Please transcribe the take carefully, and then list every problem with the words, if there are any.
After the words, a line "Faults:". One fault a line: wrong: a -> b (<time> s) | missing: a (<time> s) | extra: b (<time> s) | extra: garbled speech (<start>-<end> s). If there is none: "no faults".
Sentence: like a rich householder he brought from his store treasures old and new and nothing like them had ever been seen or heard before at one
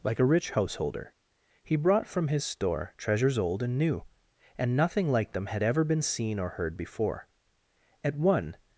like a rich householder he brought from his store treasures old and new and nothing like them had ever been seen or heard before at one
Faults:
no faults